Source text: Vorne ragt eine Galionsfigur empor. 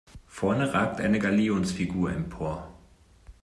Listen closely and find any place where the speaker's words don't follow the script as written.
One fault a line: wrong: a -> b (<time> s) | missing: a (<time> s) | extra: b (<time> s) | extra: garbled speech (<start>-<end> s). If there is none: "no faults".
no faults